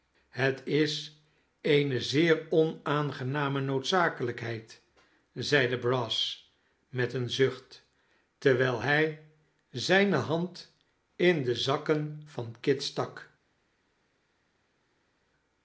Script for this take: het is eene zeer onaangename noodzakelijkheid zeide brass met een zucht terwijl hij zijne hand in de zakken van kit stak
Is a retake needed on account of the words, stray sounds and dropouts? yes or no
no